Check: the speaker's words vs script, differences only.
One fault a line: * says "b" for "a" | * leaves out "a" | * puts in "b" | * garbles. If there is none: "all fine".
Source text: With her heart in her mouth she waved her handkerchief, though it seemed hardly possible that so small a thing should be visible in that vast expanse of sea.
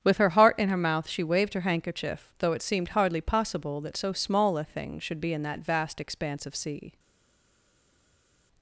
* leaves out "visible"